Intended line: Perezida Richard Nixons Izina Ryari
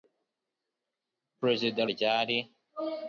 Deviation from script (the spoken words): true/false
true